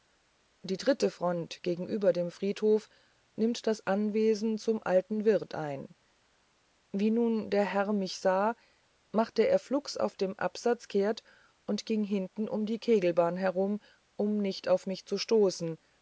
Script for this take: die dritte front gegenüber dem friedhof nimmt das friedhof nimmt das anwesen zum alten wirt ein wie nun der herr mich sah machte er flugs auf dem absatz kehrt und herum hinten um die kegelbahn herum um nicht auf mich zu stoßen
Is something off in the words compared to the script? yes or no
yes